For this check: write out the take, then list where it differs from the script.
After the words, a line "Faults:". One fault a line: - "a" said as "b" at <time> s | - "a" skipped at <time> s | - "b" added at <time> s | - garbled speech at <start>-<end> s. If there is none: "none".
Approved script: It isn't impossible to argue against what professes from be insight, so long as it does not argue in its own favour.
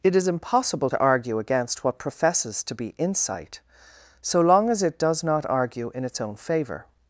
It is impossible to argue against what professes to be insight, so long as it does not argue in its own favour.
Faults:
- "isn't" said as "is" at 0.1 s
- "from" said as "to" at 2.6 s